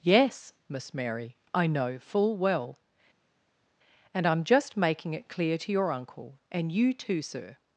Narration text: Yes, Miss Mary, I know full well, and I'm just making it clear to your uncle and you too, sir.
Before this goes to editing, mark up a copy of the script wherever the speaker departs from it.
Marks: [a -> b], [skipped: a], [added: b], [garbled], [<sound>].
Yes, Miss Mary, I know full well, and I'm just making it clear to your uncle and you too, sir.